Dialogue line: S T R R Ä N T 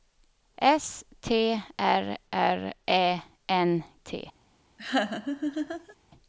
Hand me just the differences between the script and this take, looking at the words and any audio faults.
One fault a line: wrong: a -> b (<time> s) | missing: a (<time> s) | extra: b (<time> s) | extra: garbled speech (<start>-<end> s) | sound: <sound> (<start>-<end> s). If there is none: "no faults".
sound: laugh (4.8-6.0 s)